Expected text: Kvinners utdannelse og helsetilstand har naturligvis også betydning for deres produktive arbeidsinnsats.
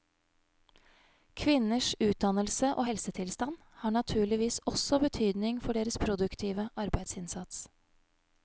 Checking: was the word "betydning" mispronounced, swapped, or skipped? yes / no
no